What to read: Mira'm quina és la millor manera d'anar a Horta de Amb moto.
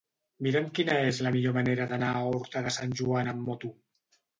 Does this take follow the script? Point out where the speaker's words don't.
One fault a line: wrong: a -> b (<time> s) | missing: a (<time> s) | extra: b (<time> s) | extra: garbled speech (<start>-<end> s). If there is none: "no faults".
extra: Sant Joan (2.8 s)